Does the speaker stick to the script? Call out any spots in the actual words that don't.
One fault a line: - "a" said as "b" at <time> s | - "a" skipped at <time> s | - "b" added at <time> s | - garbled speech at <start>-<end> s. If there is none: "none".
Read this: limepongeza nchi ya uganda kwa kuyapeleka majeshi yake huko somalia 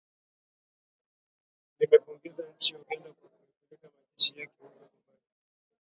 none